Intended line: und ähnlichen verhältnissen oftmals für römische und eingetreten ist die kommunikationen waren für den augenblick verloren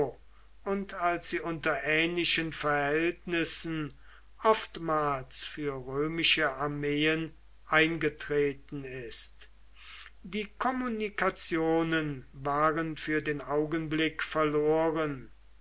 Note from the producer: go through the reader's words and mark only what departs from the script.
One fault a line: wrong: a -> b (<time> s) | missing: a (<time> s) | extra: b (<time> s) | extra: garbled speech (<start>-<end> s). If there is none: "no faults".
extra: als sie unter (0.9 s)
wrong: und -> armeen (6.5 s)